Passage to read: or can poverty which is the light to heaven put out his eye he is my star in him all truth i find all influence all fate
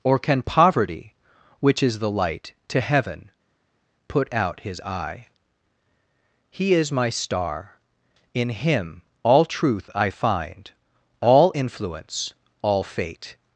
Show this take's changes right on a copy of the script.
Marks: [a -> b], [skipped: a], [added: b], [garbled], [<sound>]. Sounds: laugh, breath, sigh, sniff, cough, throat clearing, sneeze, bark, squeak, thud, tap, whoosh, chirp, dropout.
or can poverty which is the light to heaven put out his eye he is my star in him all truth i find all influence all fate